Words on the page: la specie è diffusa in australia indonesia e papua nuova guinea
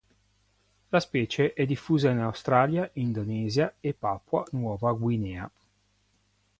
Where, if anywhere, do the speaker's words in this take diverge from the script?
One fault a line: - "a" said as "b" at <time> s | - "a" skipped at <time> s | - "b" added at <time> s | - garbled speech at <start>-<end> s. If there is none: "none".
none